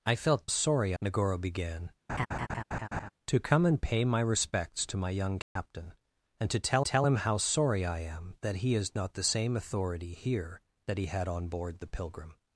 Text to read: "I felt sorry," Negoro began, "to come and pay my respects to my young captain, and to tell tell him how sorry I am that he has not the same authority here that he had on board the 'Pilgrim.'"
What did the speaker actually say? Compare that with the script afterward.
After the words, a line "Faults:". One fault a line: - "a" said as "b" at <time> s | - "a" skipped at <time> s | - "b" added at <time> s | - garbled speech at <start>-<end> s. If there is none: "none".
"I felt sorry," Negoro began, "to come and pay my respects to my young captain, and to tell tell him how sorry I am that he has not the same authority here that he had on board the 'Pilgrim.'"
Faults:
none